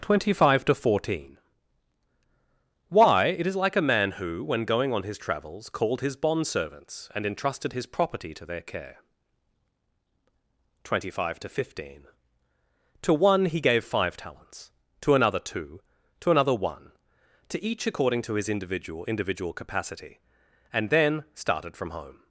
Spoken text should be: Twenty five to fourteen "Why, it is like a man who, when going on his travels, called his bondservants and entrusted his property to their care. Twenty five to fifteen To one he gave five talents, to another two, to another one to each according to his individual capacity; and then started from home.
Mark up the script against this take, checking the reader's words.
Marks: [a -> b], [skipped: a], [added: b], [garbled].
Twenty five to fourteen "Why, it is like a man who, when going on his travels, called his bondservants and entrusted his property to their care. Twenty five to fifteen To one he gave five talents, to another two, to another one to each according to his individual [added: individual] capacity; and then started from home.